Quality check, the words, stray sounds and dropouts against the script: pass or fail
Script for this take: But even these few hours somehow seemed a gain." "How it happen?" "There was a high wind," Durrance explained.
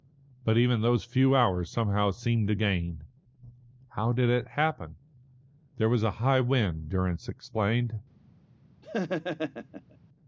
fail